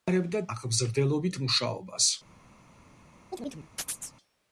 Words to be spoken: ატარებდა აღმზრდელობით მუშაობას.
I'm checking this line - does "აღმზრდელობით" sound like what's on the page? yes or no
yes